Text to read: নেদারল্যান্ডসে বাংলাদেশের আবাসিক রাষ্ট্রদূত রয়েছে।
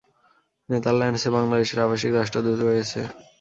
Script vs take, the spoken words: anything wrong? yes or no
no